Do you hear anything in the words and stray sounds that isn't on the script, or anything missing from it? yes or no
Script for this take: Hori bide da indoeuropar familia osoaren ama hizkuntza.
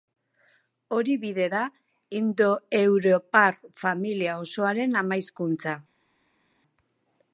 no